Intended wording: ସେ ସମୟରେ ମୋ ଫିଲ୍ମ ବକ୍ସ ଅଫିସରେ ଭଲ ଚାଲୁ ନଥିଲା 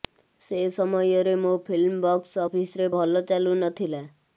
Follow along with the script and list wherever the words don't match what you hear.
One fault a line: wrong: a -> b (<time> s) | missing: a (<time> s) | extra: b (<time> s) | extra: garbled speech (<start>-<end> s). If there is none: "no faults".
no faults